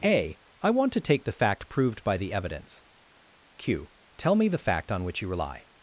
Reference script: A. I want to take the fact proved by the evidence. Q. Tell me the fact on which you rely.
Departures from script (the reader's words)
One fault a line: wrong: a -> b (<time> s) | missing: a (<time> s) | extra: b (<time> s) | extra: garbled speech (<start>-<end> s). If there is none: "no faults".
no faults